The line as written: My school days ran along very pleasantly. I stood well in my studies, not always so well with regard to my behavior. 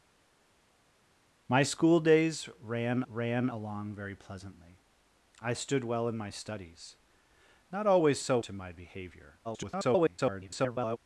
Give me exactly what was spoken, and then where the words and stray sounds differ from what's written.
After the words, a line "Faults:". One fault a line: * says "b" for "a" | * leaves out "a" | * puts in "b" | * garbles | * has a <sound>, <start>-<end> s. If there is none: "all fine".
My school days ran ran along very pleasantly. I stood well in my studies, not always so to my behavior. [garbled]
Faults:
* puts in "ran"
* leaves out "well with regard"
* garbles